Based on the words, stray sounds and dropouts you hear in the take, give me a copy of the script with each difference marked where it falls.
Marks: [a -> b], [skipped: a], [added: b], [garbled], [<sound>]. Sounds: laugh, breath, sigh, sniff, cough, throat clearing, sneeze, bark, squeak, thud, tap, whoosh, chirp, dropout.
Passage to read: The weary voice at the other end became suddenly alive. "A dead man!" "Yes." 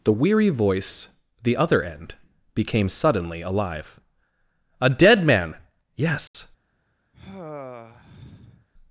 The weary voice [skipped: at] the other end became suddenly alive. "A dead man!" "Yes." [dropout] [sigh]